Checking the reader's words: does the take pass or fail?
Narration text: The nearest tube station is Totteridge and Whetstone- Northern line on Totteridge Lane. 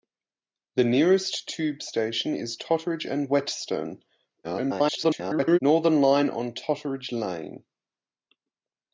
fail